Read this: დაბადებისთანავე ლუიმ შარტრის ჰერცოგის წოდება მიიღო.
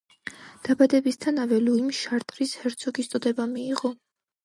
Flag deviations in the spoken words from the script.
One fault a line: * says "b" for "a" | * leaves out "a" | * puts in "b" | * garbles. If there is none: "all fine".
all fine